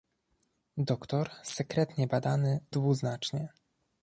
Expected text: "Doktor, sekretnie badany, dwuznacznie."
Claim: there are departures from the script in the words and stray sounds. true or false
false